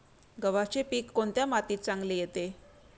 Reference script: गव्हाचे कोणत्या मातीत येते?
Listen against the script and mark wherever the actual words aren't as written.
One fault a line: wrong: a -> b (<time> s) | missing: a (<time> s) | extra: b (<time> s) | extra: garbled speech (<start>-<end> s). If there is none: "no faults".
extra: पीक (0.8 s)
extra: चांगले (1.8 s)